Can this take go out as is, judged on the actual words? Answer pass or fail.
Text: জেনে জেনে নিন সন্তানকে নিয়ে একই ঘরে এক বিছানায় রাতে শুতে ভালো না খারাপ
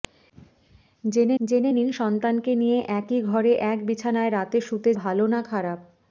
pass